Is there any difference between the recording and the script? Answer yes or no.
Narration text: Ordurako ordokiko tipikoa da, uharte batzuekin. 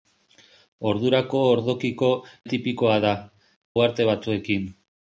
no